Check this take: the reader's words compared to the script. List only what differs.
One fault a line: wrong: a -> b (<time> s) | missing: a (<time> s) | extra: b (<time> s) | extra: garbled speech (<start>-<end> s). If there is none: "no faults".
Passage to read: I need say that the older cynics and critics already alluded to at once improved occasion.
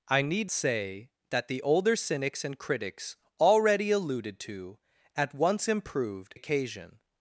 no faults